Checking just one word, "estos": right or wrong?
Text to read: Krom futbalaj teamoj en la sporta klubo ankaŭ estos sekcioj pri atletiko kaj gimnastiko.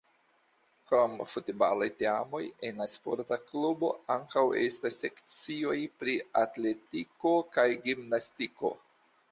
wrong